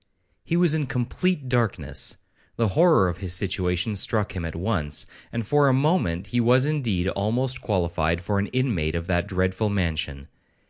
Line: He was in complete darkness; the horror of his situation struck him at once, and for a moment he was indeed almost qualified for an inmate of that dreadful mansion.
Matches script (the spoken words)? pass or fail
pass